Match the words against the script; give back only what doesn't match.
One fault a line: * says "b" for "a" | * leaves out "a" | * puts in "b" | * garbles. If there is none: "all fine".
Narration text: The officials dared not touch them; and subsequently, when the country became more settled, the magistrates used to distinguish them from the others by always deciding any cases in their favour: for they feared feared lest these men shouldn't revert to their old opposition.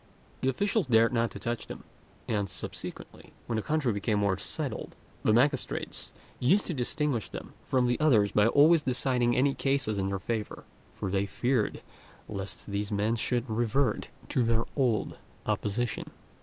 * leaves out "feared"
* says "should" for "shouldn't"